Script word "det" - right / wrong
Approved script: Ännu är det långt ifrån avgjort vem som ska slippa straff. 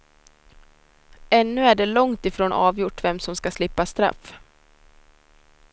right